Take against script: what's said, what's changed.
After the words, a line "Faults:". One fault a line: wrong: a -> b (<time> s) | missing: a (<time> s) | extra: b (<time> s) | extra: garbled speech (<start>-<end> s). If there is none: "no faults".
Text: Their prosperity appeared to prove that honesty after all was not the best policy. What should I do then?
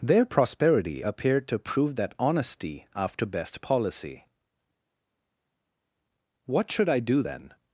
Their prosperity appeared to prove that honesty after best policy. What should I do then?
Faults:
missing: all was not the (3.3 s)